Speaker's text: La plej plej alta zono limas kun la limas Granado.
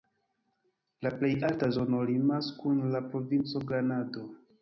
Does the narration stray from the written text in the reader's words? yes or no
yes